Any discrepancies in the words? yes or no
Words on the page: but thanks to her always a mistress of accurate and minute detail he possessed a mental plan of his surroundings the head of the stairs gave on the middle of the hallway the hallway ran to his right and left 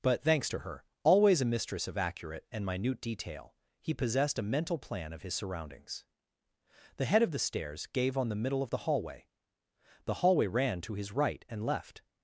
no